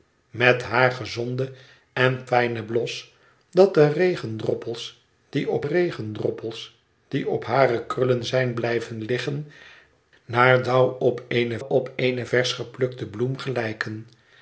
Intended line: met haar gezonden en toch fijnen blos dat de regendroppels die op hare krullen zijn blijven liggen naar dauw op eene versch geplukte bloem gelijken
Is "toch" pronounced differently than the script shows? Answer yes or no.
yes